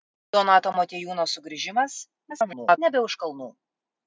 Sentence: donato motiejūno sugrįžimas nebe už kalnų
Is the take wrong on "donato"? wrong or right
right